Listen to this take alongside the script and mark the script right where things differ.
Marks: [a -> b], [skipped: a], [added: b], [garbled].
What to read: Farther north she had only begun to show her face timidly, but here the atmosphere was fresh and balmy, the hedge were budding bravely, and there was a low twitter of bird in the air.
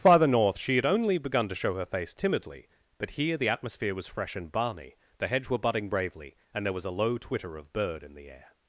Farther north she had only begun to show her face timidly, but here the atmosphere was fresh and balmy, the hedge were budding bravely, and there was a low twitter of bird in the air.